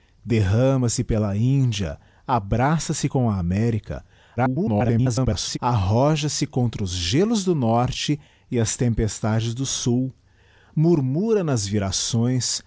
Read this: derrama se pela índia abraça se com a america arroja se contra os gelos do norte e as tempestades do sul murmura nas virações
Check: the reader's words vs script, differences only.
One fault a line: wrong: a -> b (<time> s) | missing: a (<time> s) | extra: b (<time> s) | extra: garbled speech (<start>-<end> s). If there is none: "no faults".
extra: garbled speech (4.4-5.6 s)